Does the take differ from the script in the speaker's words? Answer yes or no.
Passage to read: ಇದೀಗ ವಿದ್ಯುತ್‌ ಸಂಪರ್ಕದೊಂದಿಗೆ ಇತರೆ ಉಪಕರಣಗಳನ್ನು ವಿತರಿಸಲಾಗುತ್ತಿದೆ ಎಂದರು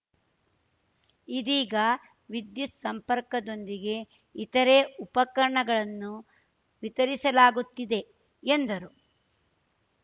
no